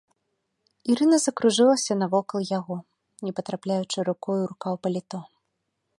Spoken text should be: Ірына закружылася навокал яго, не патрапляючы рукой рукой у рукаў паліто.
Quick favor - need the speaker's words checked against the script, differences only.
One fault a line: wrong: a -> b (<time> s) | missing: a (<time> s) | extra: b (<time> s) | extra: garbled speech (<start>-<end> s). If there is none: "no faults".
missing: рукой (4.4 s)